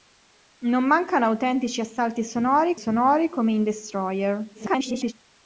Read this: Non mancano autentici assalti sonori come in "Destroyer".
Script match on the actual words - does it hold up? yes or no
no